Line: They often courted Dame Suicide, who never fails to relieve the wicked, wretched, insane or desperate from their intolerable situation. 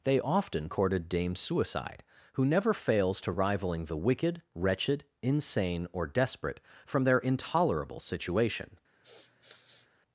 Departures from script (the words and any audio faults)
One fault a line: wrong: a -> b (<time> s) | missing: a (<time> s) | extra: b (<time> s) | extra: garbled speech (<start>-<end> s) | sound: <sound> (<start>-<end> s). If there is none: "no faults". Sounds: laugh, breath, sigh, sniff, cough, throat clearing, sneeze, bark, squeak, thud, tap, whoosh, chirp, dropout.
wrong: relieve -> rivaling (3.3 s)
sound: sniff (9.0-9.9 s)